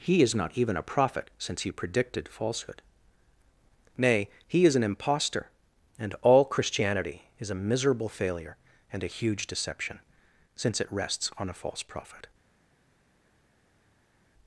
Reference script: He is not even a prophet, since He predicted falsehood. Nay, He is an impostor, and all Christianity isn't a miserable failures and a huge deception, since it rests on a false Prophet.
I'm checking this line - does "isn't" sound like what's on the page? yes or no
no